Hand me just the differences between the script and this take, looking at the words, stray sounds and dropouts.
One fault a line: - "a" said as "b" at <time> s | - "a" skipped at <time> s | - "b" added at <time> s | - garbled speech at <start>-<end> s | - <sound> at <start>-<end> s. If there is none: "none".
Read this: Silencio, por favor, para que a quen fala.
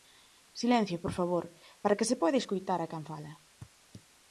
- "se poida escoitar" added at 2.1 s